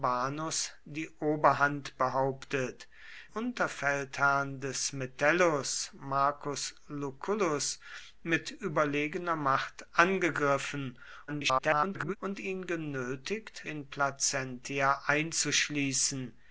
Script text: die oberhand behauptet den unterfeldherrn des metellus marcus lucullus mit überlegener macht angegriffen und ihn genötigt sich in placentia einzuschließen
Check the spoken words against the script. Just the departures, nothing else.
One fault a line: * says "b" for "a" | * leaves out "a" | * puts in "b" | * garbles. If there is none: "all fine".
* leaves out "den"
* garbles
* leaves out "sich"